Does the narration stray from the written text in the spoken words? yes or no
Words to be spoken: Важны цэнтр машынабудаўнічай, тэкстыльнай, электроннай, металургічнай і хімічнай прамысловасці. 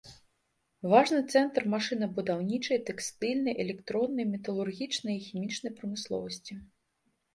no